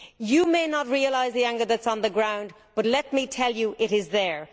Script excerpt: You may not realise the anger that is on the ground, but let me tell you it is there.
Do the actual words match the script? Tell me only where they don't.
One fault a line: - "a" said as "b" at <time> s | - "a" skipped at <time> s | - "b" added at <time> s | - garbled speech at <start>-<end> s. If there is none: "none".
none